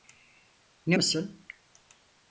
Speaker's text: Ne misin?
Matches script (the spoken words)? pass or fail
pass